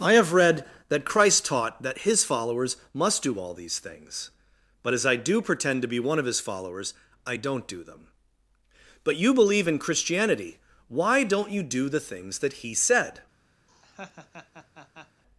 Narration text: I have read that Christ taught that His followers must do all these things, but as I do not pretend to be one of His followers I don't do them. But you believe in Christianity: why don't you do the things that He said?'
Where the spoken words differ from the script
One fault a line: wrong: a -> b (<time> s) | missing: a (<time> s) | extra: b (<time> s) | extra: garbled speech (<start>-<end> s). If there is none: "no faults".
missing: not (5.4 s)